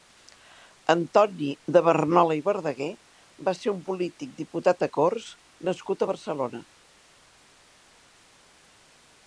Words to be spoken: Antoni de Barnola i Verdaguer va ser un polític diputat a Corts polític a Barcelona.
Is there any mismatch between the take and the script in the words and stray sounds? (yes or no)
yes